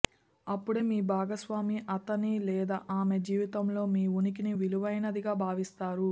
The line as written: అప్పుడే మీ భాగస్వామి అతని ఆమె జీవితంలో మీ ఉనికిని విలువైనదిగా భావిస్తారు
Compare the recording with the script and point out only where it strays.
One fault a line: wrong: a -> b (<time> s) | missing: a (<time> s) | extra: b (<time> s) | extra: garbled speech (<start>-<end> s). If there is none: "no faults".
extra: లేదా (2.4 s)